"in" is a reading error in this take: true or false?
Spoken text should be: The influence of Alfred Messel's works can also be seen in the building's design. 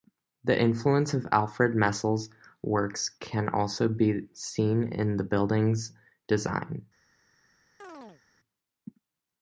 false